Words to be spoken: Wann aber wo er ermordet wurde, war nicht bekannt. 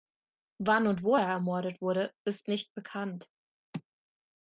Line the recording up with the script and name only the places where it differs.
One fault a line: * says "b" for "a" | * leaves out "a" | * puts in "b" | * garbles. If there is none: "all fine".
* says "und" for "aber"
* says "ist" for "war"